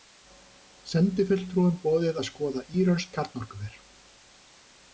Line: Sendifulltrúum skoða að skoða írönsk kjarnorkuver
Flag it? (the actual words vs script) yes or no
yes